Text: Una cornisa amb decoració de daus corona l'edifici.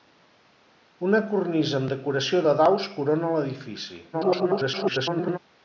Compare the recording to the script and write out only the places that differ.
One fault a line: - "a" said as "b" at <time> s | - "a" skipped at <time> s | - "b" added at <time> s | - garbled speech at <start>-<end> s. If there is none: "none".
- garbled speech at 4.1-5.4 s